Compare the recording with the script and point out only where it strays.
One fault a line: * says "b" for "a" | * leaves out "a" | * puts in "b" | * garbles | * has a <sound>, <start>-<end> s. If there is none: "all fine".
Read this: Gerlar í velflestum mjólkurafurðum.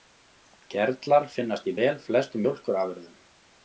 * puts in "finnast"